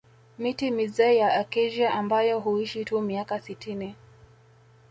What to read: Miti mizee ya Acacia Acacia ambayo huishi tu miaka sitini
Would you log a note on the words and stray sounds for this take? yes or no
yes